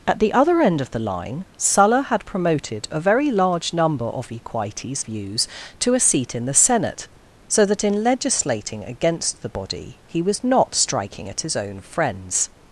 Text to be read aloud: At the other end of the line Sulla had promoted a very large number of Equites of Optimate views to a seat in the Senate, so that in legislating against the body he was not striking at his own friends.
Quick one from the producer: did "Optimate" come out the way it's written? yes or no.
no